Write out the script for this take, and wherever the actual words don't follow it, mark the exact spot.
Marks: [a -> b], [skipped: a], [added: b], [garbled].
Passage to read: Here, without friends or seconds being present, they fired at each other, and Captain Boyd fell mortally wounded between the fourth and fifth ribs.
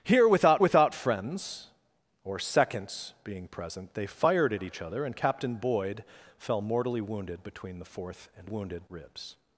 Here, without [added: without] friends or seconds being present, they fired at each other, and Captain Boyd fell mortally wounded between the fourth and [fifth -> wounded] ribs.